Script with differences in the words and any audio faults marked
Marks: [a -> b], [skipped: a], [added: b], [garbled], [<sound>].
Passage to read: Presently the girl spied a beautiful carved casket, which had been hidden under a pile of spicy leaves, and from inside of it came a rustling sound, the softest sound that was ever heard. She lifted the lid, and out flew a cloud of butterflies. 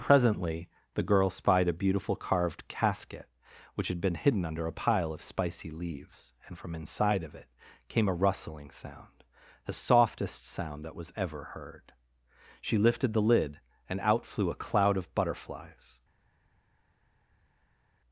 Presently the girl spied a beautiful carved casket, which had been hidden under a pile of spicy leaves, and from inside of it came a rustling sound, the softest sound that was ever heard. She lifted the lid, and out flew a cloud of butterflies.